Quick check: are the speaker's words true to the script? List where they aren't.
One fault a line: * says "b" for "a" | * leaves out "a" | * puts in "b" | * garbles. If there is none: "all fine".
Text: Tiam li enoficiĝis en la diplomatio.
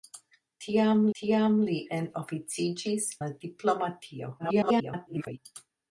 * puts in "tiam"
* leaves out "en"
* garbles